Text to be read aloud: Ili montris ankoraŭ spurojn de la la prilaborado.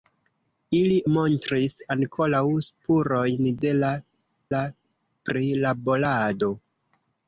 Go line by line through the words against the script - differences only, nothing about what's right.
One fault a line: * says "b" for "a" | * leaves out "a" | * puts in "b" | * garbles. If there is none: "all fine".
all fine